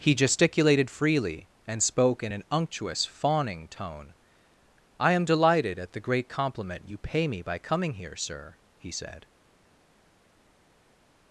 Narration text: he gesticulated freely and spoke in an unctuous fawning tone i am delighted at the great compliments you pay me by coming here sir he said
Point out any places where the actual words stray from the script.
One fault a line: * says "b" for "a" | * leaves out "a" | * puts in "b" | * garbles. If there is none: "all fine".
* says "compliment" for "compliments"